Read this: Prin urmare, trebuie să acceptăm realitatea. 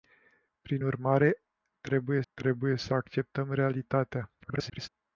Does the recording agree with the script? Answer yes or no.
no